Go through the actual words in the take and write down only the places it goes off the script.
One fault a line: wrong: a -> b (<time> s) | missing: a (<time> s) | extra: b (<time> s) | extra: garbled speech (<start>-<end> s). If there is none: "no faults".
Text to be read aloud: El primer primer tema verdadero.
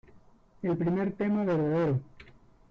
missing: primer (1.1 s)